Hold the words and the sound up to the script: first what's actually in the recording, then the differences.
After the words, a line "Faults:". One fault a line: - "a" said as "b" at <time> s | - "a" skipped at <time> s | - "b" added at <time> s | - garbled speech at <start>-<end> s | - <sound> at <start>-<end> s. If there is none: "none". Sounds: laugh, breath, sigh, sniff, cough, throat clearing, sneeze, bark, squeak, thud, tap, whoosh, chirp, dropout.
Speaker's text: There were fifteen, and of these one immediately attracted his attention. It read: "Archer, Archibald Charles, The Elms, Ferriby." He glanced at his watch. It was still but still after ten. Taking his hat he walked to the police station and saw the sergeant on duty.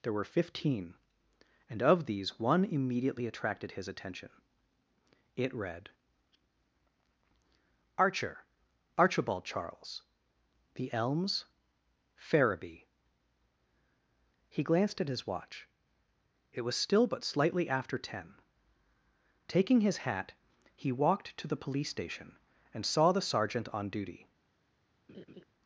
There were fifteen, and of these one immediately attracted his attention. It read: "Archer, Archibald Charles, The Elms, Ferriby." He glanced at his watch. It was still but slightly after ten. Taking his hat he walked to the police station and saw the sergeant on duty.
Faults:
- "still" said as "slightly" at 17.2 s
- laugh at 25.1-25.4 s